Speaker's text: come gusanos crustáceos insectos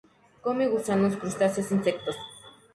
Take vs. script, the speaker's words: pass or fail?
pass